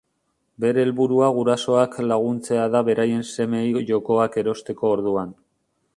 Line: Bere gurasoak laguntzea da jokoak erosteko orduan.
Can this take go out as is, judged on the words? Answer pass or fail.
fail